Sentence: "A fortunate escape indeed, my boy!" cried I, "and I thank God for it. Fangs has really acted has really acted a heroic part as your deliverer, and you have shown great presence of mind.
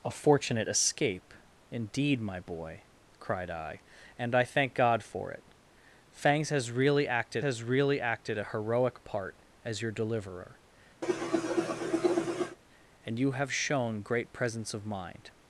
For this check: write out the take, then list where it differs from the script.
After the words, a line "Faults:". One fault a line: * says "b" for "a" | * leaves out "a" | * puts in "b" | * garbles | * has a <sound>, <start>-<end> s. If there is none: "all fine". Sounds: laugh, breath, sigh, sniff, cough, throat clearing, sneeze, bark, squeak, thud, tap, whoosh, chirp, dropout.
"A fortunate escape indeed, my boy!" cried I, "and I thank God for it. Fangs has really acted has really acted a heroic part as your deliverer, and you have shown great presence of mind.
Faults:
* has a cough, 11.0-12.6 s